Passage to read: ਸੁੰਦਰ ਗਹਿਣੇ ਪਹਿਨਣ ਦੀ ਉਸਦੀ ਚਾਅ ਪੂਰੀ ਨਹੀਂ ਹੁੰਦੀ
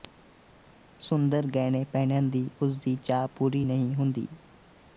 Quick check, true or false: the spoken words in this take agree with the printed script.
true